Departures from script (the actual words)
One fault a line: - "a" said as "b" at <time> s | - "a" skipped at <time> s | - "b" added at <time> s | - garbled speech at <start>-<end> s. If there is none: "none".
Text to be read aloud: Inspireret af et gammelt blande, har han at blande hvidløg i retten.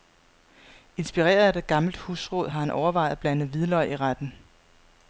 - "blande" said as "husråd" at 2.0 s
- "overvejet" added at 2.7 s